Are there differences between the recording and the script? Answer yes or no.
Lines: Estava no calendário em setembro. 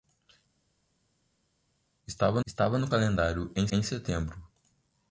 yes